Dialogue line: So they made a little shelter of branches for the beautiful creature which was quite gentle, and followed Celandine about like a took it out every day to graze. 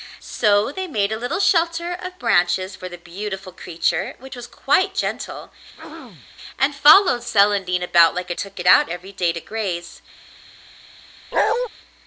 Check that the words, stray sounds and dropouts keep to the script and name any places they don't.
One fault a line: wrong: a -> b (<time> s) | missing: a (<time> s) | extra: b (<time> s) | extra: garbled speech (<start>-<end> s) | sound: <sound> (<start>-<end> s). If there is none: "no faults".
sound: throat clearing (5.7-6.3 s)
sound: bark (11.3-11.7 s)